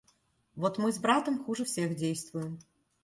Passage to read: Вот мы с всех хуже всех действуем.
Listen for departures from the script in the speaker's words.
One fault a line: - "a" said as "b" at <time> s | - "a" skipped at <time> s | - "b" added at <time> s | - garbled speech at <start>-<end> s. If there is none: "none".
- "всех" said as "братом" at 1.0 s